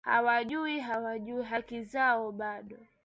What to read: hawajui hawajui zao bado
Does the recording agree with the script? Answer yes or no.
no